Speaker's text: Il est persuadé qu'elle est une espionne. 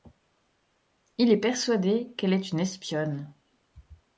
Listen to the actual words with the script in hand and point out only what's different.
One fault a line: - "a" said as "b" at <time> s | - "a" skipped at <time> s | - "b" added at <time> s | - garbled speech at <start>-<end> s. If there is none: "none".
none